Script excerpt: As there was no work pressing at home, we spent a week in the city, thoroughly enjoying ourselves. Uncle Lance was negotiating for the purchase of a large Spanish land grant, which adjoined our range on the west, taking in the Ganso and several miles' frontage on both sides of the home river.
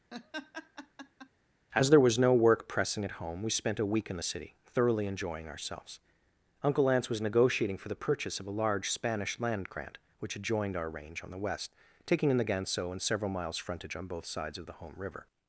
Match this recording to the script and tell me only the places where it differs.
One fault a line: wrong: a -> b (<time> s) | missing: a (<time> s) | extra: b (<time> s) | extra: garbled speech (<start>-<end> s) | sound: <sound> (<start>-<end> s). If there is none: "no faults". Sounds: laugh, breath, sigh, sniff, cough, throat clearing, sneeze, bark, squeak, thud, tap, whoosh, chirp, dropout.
sound: laugh (0.1-1.3 s)